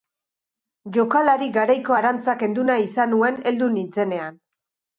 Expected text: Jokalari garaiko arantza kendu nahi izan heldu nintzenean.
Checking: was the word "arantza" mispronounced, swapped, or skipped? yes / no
no